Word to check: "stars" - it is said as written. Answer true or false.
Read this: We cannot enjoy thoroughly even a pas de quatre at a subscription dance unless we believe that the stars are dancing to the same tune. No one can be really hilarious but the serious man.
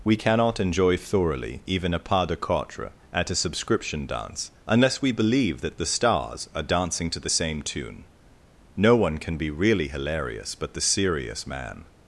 true